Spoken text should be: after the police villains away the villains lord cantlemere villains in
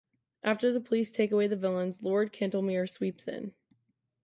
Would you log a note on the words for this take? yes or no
yes